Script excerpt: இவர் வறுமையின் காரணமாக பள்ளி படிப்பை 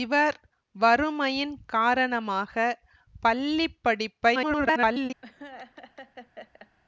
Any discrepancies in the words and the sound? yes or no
yes